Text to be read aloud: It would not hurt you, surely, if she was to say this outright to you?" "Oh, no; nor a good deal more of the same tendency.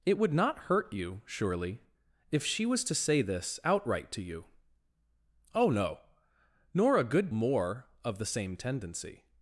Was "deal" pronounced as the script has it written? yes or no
no